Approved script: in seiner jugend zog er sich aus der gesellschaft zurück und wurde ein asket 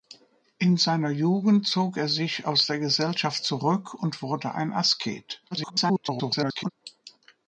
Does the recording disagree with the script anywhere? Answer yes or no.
yes